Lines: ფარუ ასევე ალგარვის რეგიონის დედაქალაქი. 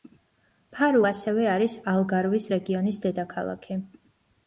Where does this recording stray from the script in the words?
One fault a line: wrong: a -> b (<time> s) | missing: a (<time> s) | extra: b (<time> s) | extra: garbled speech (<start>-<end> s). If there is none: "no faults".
extra: არის (1.5 s)